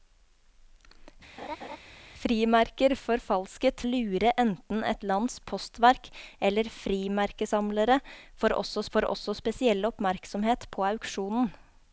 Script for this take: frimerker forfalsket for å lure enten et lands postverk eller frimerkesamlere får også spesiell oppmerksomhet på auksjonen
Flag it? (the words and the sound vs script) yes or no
yes